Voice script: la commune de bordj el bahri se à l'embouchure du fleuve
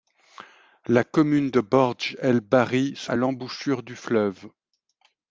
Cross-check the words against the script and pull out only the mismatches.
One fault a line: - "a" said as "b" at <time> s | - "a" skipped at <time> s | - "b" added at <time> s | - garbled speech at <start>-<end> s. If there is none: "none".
none